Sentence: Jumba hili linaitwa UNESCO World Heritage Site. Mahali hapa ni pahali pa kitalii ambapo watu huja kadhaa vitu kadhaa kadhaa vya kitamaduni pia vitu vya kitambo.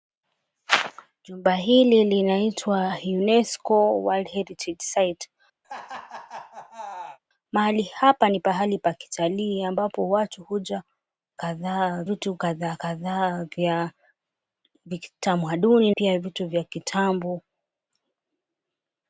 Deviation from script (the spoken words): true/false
false